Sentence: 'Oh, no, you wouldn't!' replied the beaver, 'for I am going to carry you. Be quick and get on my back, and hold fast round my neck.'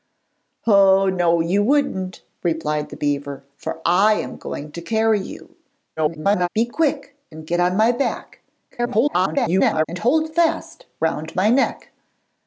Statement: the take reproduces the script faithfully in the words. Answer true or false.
false